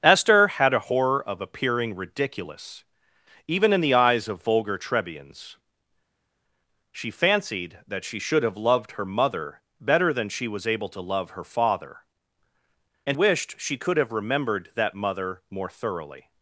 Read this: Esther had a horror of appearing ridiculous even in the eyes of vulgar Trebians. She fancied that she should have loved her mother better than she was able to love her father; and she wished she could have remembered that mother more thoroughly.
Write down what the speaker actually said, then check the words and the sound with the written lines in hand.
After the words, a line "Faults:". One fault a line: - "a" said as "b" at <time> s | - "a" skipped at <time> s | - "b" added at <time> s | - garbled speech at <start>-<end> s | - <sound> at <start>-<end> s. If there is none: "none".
Esther had a horror of appearing ridiculous even in the eyes of vulgar Trebians. She fancied that she should have loved her mother better than she was able to love her father; and wished she could have remembered that mother more thoroughly.
Faults:
- "she" skipped at 13.2 s